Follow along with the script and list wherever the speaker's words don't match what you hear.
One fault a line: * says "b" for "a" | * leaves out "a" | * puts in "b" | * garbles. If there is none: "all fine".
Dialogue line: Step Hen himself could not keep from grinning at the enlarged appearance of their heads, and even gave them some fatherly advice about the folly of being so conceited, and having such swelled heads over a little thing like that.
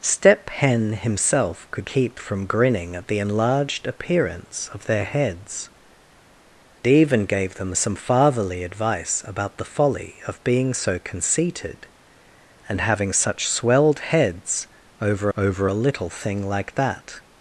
* leaves out "not"
* leaves out "and"
* puts in "over"